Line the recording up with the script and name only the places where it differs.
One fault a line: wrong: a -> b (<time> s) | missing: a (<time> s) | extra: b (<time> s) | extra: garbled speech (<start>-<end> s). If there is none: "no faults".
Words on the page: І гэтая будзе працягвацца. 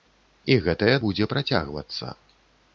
no faults